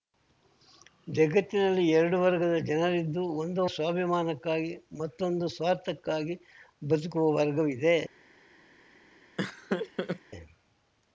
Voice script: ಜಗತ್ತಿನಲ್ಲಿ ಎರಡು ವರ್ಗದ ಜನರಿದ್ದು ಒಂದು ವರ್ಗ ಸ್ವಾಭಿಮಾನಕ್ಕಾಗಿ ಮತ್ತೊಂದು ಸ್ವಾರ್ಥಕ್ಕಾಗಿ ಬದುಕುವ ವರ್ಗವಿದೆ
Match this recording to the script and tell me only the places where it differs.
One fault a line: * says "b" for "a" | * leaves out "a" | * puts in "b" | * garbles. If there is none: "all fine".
* leaves out "ವರ್ಗ"